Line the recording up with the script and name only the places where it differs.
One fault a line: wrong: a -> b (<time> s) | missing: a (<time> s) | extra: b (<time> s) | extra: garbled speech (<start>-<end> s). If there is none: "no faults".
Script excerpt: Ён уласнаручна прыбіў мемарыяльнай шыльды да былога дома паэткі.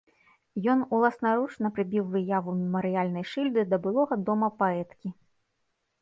extra: выяву (2.1 s)